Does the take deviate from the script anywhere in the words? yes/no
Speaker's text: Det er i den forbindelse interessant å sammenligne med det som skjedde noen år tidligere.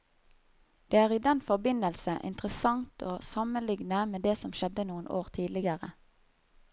no